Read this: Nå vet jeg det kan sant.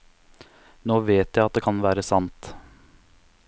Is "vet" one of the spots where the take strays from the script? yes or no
no